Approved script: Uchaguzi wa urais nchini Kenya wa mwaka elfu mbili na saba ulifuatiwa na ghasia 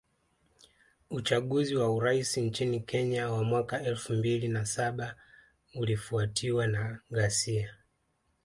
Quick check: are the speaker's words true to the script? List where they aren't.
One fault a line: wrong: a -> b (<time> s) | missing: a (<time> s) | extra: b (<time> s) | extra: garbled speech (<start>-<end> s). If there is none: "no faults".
no faults